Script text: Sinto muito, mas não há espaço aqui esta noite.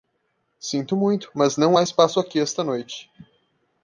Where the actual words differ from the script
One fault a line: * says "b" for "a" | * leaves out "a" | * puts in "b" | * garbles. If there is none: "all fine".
all fine